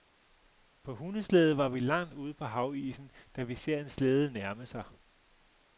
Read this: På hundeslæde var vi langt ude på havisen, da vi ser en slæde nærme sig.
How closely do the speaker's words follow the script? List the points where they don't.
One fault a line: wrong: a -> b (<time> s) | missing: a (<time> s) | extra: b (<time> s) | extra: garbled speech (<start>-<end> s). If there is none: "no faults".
no faults